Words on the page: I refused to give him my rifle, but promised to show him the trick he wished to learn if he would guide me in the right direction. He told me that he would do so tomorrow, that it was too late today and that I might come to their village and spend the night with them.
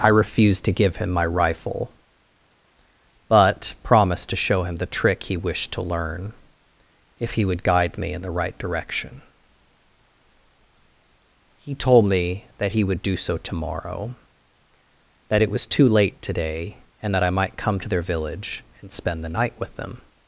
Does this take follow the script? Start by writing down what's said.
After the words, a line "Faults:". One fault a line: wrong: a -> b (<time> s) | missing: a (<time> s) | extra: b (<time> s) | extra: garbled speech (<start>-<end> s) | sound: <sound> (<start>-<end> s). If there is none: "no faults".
I refused to give him my rifle, but promised to show him the trick he wished to learn if he would guide me in the right direction. He told me that he would do so tomorrow, that it was too late today and that I might come to their village and spend the night with them.
Faults:
no faults